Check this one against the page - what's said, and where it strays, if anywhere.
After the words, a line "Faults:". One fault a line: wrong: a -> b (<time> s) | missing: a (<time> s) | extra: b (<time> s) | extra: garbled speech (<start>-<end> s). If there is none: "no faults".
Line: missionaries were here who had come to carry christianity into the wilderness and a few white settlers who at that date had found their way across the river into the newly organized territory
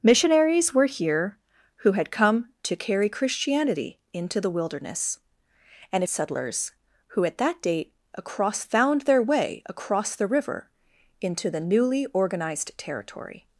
missionaries were here who had come to carry christianity into the wilderness and settlers who at that date across found their way across the river into the newly organized territory
Faults:
missing: a few white (6.0 s)
wrong: had -> across (8.1 s)